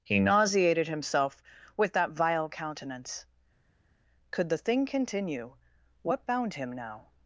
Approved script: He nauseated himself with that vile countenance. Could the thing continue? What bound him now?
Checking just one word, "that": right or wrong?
right